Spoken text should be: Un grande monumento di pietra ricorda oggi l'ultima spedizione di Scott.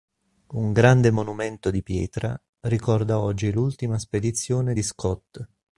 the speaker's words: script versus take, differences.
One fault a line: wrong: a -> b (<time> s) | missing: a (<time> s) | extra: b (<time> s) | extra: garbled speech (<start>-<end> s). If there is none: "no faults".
no faults